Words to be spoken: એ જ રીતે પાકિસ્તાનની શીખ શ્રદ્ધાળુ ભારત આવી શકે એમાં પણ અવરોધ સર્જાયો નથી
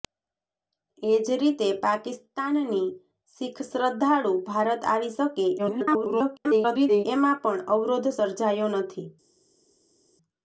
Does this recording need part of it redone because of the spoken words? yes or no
yes